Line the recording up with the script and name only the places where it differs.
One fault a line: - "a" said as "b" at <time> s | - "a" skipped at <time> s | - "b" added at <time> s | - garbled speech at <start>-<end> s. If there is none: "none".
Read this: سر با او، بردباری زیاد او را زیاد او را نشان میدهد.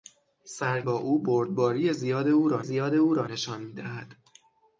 none